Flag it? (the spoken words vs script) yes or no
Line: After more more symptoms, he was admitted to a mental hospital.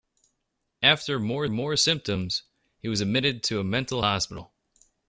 no